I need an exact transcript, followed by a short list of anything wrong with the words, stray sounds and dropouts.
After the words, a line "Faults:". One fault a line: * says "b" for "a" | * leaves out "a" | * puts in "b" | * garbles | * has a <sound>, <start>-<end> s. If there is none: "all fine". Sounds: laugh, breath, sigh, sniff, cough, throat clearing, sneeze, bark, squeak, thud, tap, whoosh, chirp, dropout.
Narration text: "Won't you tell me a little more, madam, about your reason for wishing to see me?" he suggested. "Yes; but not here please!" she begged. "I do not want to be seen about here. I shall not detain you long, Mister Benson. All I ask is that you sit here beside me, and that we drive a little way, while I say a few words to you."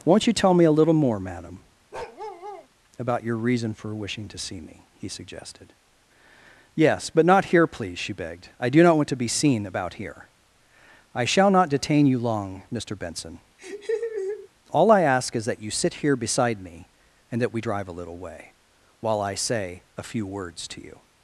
"Won't you tell me a little more, madam, about your reason for wishing to see me?" he suggested. "Yes; but not here please!" she begged. "I do not want to be seen about here. I shall not detain you long, Mister Benson. All I ask is that you sit here beside me, and that we drive a little way, while I say a few words to you."
Faults:
* has a bark, 1.9-2.7 s
* has a laugh, 13.6-14.5 s